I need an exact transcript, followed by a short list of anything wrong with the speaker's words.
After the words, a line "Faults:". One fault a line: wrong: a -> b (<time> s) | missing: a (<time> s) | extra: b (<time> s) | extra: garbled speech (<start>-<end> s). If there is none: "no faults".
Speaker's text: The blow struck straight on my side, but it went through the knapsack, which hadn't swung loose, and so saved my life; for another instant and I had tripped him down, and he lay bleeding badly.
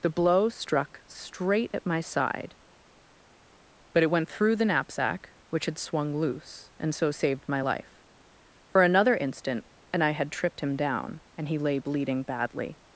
The blow struck straight at my side, but it went through the knapsack, which had swung loose, and so saved my life; for another instant and I had tripped him down, and he lay bleeding badly.
Faults:
wrong: on -> at (1.7 s)
wrong: hadn't -> had (5.7 s)